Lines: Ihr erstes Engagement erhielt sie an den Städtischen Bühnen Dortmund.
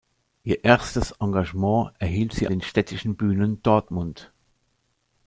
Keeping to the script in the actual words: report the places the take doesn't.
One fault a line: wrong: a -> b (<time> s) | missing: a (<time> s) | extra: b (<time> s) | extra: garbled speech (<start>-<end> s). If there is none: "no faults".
missing: an (2.5 s)